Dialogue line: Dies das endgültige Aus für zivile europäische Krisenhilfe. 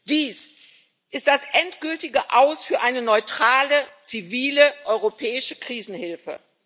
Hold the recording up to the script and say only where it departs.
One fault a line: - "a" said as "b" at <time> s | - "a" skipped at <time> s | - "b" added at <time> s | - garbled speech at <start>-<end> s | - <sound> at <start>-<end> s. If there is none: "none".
- "ist" added at 1.1 s
- "eine neutrale" added at 2.8 s